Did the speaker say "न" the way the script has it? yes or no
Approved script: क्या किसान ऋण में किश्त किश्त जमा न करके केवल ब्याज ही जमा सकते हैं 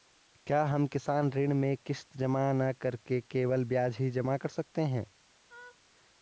yes